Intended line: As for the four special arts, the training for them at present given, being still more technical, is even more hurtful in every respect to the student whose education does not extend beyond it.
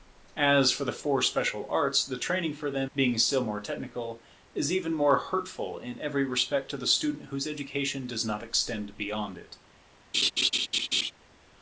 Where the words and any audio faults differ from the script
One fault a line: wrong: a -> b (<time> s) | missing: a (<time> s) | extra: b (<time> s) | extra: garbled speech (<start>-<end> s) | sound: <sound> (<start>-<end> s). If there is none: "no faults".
missing: at present given (2.9 s)
sound: laugh (10.1-11.1 s)